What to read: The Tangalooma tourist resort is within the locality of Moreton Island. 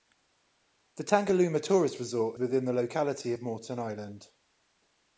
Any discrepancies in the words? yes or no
yes